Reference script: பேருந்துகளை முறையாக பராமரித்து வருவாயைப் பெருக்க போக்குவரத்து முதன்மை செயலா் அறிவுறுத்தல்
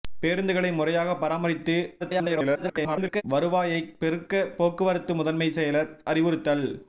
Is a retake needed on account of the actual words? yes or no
yes